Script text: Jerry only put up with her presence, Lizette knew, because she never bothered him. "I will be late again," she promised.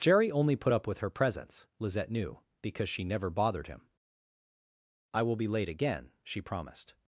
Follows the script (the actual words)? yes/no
yes